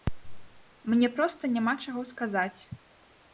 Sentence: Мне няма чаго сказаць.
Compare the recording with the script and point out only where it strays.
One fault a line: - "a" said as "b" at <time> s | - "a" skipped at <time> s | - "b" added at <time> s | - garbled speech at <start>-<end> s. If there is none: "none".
- "проста" added at 1.2 s